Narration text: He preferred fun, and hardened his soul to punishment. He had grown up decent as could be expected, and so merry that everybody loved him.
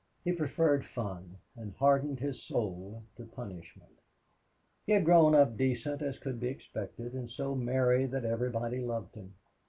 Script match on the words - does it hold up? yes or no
yes